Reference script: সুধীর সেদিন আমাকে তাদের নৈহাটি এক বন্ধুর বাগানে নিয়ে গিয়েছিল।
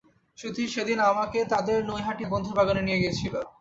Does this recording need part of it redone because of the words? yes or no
no